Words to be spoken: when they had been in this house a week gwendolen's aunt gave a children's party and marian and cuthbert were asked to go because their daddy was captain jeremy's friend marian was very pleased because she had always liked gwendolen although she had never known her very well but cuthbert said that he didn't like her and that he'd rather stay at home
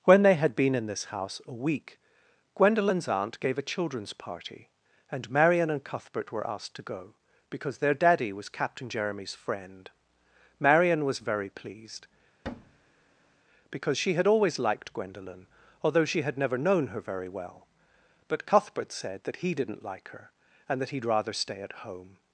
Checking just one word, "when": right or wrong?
right